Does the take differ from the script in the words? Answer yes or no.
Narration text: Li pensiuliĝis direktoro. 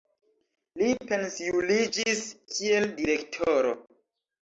yes